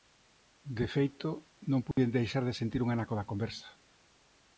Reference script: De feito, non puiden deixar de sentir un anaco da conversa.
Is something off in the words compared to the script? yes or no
no